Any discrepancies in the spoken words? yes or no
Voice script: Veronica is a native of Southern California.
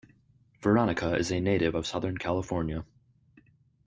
no